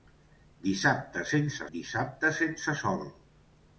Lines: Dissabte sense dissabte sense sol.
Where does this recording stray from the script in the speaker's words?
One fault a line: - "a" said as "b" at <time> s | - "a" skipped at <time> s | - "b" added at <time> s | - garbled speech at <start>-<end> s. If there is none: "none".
none